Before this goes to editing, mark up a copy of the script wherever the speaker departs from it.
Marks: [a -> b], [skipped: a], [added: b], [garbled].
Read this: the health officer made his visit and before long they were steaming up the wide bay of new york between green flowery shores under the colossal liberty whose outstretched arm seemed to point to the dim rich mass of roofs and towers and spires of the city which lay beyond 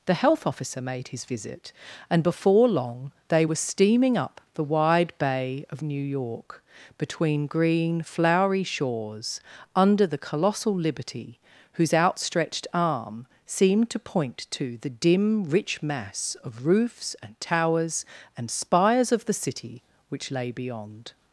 the health officer made his visit and before long they were steaming up the wide bay of new york between green flowery shores under the colossal liberty whose outstretched arm seemed to point to the dim rich mass of roofs and towers and spires of the city which lay beyond